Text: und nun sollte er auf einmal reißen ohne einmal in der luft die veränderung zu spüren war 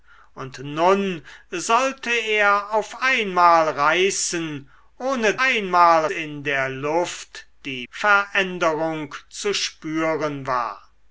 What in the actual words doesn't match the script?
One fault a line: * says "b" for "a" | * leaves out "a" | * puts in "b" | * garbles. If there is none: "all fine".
all fine